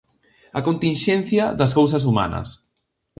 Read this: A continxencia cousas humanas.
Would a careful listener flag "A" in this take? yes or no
no